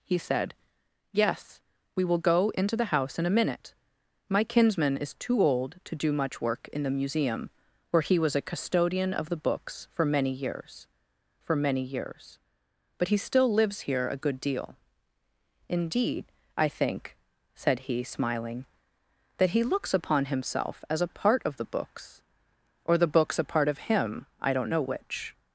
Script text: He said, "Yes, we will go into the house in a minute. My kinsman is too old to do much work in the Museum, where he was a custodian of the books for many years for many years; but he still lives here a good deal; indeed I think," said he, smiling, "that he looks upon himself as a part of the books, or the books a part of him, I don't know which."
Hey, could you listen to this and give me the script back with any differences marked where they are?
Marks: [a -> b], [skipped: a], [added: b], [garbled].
He said, "Yes, we will go into the house in a minute. My kinsman is too old to do much work in the Museum, where he was a custodian of the books for many years for many years; but he still lives here a good deal; indeed I think," said he, smiling, "that he looks upon himself as a part of the books, or the books a part of him, I don't know which."